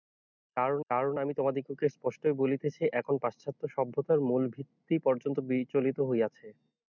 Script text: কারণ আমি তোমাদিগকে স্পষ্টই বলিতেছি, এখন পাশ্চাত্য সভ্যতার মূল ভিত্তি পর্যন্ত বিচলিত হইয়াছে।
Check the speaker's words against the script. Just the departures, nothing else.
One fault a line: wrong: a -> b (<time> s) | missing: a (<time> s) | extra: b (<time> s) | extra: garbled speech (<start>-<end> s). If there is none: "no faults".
extra: কারণ (0.9 s)